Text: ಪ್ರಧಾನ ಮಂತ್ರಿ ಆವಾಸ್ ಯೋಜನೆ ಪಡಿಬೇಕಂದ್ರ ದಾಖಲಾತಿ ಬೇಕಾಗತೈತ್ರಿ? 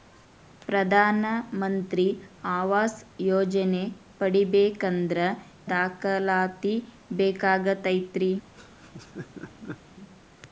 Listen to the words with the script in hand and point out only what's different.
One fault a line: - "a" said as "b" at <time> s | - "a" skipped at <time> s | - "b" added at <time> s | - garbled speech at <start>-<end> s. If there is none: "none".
none